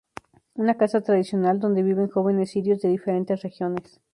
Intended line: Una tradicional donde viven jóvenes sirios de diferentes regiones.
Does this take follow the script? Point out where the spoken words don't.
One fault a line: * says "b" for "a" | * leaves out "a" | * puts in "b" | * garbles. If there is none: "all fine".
* puts in "casa"